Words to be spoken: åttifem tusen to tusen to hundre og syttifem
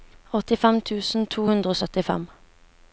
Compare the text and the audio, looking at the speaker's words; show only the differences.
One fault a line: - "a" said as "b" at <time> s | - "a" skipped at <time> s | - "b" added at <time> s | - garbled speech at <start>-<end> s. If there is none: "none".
- "tusen to" skipped at 1.5 s